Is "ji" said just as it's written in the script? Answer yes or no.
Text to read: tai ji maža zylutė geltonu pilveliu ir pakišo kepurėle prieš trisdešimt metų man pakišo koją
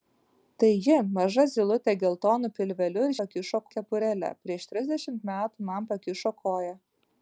yes